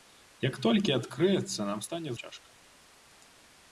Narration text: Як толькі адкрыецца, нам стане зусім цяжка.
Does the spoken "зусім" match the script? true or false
false